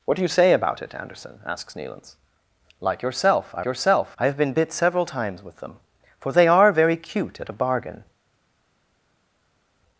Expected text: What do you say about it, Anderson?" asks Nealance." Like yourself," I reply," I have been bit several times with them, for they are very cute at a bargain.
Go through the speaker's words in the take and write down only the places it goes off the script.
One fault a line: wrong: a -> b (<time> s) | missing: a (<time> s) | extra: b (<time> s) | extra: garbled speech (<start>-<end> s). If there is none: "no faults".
wrong: reply -> yourself (3.7 s)